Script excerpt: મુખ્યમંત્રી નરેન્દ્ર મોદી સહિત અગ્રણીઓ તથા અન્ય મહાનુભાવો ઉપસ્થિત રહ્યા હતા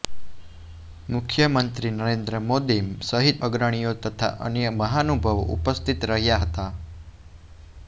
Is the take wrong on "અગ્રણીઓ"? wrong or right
right